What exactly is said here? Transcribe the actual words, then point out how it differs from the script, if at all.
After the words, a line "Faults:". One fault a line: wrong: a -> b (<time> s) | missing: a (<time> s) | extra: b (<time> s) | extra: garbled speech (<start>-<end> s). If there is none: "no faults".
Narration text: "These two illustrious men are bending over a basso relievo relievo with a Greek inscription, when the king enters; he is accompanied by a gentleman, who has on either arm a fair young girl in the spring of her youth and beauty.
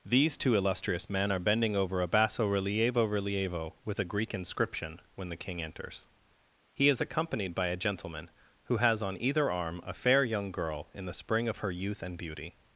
"These two illustrious men are bending over a basso relievo relievo with a Greek inscription, when the king enters; he is accompanied by a gentleman, who has on either arm a fair young girl in the spring of her youth and beauty.
Faults:
no faults